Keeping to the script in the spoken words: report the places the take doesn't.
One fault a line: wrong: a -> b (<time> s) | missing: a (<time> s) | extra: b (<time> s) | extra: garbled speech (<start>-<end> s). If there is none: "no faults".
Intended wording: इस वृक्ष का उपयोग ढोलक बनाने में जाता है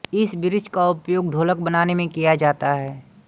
extra: किया (2.1 s)